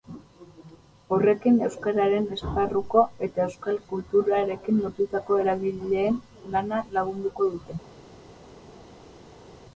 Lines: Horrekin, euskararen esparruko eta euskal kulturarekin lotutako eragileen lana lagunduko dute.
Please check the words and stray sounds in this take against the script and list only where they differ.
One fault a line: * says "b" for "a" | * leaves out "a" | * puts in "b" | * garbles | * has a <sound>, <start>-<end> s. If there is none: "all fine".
all fine